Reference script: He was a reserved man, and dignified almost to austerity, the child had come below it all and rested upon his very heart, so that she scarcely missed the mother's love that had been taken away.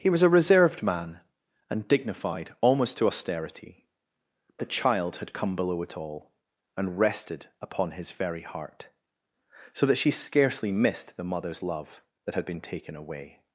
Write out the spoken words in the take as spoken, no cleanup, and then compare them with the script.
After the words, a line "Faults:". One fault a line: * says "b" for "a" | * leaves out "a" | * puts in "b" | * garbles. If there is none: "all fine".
He was a reserved man, and dignified almost to austerity, the child had come below it all and rested upon his very heart, so that she scarcely missed the mother's love that had been taken away.
Faults:
all fine